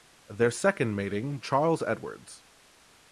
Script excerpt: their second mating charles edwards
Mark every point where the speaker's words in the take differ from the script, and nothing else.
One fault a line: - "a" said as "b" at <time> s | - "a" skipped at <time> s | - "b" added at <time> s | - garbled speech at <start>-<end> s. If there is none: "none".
none